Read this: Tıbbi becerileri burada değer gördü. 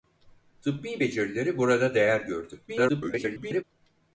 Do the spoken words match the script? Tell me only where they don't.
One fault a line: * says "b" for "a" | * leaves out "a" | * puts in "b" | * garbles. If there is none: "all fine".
* garbles